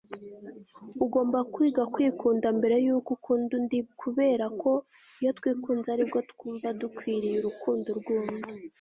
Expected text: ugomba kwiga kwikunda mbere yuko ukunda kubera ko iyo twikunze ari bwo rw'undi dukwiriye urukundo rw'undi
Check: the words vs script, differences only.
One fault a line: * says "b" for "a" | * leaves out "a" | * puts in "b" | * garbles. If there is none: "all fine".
* puts in "undi"
* says "twumva" for "rw'undi"